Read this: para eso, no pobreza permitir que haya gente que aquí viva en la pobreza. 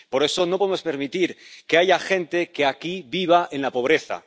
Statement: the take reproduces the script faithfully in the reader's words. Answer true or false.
false